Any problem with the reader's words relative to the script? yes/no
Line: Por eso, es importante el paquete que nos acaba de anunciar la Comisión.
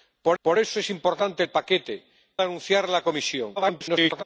yes